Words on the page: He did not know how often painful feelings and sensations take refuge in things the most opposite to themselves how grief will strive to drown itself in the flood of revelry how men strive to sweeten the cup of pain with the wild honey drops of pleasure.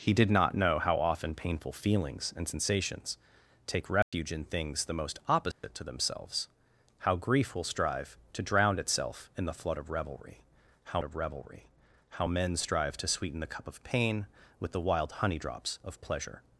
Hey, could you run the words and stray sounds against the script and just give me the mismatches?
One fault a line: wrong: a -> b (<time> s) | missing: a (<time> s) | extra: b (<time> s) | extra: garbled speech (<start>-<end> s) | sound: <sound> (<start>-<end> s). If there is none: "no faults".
sound: dropout (4.0-4.1 s)
sound: dropout (5.5-5.6 s)
extra: of revelry how (11.0 s)